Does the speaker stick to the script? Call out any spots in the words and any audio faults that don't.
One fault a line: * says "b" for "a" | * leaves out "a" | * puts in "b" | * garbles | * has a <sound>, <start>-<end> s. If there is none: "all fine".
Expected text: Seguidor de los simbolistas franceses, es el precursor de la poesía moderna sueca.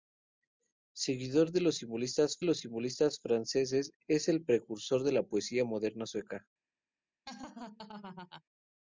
* puts in "los simbolistas"
* has a laugh, 7.3-8.4 s